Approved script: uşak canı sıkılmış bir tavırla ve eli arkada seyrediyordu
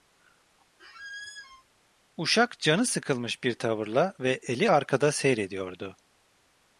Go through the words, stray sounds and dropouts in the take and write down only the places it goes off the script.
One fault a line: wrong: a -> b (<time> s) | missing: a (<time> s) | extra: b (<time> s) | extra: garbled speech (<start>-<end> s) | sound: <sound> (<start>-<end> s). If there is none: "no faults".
sound: squeak (0.8-1.6 s)